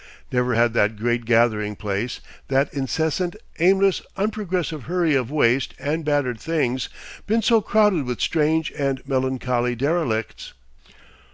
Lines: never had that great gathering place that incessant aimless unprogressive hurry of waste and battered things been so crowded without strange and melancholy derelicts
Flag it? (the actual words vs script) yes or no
yes